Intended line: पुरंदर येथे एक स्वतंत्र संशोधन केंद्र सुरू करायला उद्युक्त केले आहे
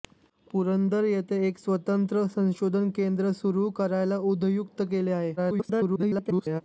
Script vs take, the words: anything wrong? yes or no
yes